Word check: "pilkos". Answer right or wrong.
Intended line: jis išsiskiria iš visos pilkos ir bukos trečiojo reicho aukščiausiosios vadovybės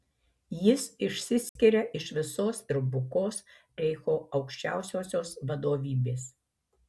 wrong